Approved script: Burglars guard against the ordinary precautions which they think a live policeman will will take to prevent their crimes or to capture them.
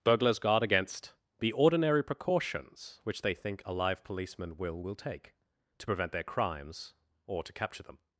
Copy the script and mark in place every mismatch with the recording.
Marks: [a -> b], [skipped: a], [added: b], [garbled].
Burglars guard against the ordinary precautions which they think a live policeman will will take to prevent their crimes or to capture them.